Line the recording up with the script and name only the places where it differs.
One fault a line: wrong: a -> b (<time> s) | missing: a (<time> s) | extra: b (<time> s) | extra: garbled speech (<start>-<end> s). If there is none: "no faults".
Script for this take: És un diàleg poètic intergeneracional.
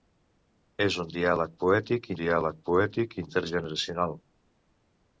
extra: diàleg poètic (2.2 s)